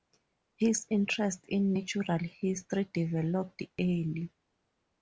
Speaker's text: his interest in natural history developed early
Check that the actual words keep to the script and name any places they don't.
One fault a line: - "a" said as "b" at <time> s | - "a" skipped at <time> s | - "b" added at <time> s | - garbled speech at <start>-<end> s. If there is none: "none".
none